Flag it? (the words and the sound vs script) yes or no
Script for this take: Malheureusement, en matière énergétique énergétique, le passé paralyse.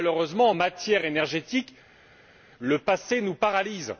yes